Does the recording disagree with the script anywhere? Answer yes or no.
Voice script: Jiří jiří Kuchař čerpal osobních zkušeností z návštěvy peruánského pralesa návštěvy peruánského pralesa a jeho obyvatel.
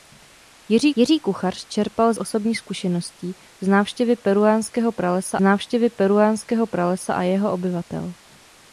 no